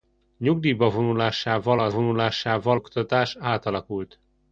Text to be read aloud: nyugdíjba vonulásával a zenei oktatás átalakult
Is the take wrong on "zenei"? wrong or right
wrong